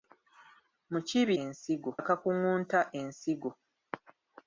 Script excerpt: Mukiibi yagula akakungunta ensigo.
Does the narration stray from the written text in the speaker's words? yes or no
yes